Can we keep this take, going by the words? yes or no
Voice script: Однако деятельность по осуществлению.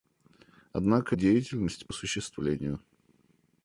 yes